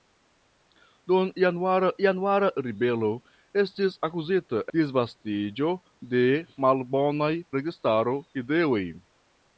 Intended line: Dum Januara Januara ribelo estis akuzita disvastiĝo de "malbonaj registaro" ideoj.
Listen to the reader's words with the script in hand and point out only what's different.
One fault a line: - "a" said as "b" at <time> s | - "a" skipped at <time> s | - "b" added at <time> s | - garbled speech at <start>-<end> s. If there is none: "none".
none